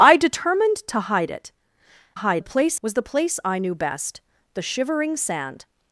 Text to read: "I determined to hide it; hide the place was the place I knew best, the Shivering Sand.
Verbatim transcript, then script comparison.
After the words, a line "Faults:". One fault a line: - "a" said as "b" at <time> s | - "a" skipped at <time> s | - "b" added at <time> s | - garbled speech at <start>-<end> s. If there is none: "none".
"I determined to hide it; hide the place was the place I knew best, the Shivering Sand.
Faults:
none